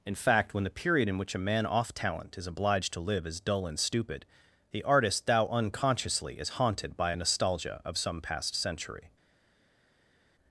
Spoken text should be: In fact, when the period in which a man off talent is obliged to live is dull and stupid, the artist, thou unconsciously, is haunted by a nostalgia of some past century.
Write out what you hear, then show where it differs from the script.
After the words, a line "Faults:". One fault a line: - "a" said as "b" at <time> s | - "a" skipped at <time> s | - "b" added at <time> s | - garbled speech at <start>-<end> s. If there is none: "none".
In fact, when the period in which a man off talent is obliged to live is dull and stupid, the artist, thou unconsciously, is haunted by a nostalgia of some past century.
Faults:
none